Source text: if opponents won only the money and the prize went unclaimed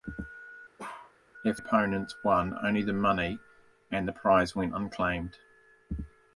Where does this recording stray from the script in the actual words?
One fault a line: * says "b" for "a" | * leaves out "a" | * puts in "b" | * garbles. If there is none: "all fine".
all fine